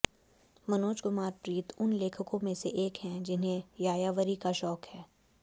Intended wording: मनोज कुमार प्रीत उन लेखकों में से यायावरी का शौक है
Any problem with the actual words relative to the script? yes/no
yes